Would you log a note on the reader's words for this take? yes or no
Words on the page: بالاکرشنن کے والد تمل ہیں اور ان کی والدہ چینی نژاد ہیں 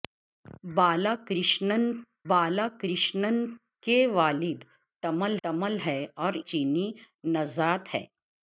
yes